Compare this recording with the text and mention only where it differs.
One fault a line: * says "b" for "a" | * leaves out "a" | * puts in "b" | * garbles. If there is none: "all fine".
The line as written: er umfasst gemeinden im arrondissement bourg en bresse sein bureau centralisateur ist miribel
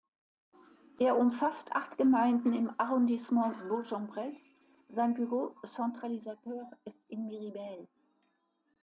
* puts in "acht"
* puts in "in"